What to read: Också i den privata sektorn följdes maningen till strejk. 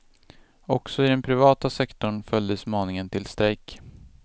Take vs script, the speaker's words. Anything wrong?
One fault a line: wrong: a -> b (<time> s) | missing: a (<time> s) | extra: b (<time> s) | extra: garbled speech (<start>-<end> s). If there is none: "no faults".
no faults